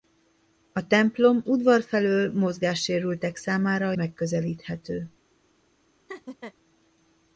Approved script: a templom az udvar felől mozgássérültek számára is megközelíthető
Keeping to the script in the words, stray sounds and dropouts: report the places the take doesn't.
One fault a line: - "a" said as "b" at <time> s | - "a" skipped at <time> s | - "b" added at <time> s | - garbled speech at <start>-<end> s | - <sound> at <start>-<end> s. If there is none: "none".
- "az" skipped at 1.4 s
- "is" skipped at 3.9 s
- laugh at 6.1-6.5 s